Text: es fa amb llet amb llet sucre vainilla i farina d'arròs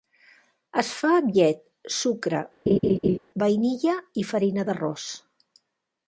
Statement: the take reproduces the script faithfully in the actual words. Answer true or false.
false